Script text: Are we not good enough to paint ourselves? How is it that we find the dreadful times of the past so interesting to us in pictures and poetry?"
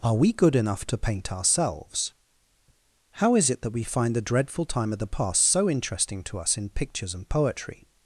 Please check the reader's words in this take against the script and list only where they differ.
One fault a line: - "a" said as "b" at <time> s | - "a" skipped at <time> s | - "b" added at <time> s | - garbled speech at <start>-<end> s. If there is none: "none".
- "not" skipped at 0.3 s
- "times" said as "time" at 4.7 s